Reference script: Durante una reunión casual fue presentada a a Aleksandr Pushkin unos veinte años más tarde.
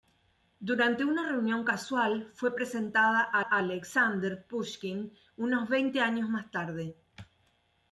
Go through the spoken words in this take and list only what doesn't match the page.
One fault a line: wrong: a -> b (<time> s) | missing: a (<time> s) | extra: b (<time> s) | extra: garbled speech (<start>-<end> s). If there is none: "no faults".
no faults